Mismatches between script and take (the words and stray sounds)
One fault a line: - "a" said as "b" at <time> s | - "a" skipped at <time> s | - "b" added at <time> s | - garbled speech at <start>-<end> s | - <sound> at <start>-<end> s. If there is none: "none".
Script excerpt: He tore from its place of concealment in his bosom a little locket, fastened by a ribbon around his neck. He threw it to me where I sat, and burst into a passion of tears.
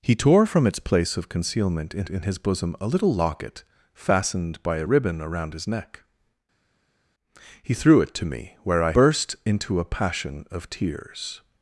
- "in" added at 2.1 s
- "sat and" skipped at 8.9 s